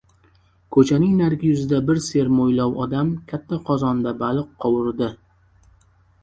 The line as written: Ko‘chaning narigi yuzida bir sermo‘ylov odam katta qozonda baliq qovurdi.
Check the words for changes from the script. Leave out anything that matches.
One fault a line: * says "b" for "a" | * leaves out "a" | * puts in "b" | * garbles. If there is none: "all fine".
all fine